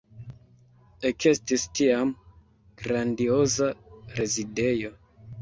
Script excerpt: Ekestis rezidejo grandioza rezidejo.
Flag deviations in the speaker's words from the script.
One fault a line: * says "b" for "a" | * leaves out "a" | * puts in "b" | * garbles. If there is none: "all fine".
* says "tiam" for "rezidejo"